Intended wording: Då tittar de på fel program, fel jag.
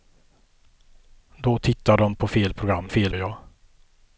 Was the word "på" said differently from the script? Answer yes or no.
no